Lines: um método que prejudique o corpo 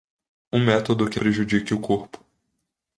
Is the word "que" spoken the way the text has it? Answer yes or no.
yes